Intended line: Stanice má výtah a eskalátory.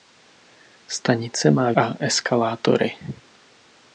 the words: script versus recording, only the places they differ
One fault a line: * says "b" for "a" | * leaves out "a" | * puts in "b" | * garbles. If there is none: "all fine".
* leaves out "výtah"